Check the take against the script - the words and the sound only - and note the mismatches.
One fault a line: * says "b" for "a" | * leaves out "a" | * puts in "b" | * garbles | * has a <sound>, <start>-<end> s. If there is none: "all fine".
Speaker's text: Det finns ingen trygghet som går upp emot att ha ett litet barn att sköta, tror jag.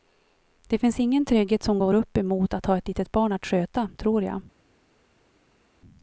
all fine